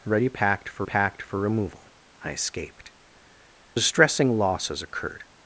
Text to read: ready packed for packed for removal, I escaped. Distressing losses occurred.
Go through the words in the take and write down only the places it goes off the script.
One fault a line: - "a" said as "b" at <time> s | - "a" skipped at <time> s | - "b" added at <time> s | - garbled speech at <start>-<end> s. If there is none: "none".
none